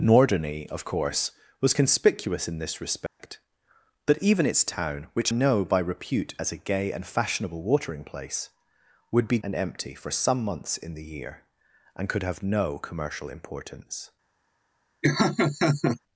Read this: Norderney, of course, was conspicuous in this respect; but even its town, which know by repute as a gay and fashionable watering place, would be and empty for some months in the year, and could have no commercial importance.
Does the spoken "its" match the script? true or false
true